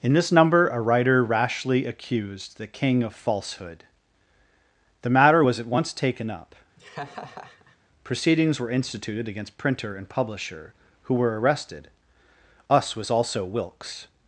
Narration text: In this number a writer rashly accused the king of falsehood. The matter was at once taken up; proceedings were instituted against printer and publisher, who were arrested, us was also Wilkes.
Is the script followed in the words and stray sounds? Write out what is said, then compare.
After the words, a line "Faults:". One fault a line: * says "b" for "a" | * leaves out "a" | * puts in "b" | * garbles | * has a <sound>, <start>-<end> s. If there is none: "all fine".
In this number a writer rashly accused the king of falsehood. The matter was at once taken up; proceedings were instituted against printer and publisher, who were arrested, us was also Wilkes.
Faults:
* has a laugh, 6.8-7.8 s